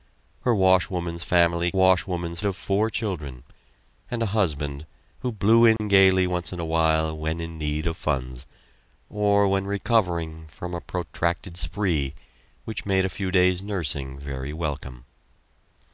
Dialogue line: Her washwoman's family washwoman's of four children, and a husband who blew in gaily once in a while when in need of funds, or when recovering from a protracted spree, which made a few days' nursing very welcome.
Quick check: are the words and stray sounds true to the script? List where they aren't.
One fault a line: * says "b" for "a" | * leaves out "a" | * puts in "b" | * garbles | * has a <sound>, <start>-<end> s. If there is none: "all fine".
* has a dropout, 5.8-5.8 s